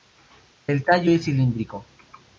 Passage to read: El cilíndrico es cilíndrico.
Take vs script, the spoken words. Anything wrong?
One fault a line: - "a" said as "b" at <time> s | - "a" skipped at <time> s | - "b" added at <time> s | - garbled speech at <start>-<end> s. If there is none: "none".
- "cilíndrico" said as "tallo" at 0.8 s